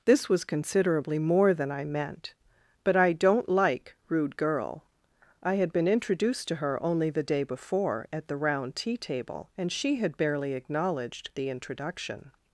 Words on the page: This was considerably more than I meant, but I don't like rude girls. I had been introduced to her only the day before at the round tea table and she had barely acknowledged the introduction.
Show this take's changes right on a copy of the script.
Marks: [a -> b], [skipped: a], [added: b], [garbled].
This was considerably more than I meant, but I don't like rude [girls. -> girl] I had been introduced to her only the day before at the round tea table and she had barely acknowledged the introduction.